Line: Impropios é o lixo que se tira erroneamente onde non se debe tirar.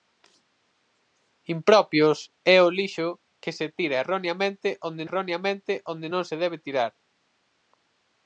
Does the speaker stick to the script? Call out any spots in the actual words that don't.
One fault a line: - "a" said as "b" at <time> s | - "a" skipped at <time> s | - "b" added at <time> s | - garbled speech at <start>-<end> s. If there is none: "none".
- "erroneamente onde" added at 5.1 s